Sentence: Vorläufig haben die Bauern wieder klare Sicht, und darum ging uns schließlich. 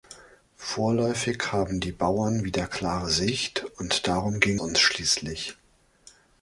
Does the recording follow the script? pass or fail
pass